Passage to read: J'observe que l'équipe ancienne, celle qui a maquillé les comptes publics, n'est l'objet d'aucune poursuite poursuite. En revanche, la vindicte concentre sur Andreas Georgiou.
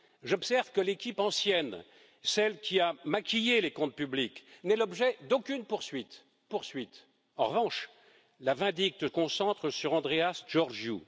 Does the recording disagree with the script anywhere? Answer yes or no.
no